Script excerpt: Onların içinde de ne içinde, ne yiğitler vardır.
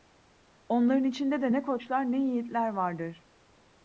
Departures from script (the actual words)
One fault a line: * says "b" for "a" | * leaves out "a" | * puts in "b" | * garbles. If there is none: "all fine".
* says "koçlar" for "içinde"